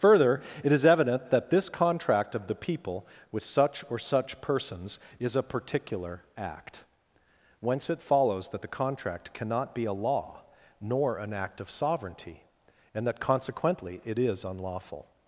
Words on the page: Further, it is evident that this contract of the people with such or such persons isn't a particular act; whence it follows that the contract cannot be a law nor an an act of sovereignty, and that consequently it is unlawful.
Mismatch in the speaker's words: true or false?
true